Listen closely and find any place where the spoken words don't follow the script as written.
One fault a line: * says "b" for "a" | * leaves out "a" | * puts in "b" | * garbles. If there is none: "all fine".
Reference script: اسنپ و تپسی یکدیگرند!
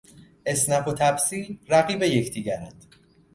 * puts in "رقیب"